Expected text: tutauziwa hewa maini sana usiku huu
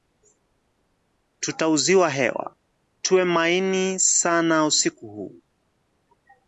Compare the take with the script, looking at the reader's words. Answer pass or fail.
fail